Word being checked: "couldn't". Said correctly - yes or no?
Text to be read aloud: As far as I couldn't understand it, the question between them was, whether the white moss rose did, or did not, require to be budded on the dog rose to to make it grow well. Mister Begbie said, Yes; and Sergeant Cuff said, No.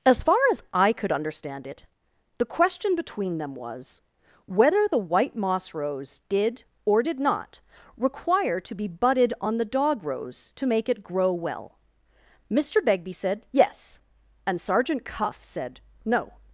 no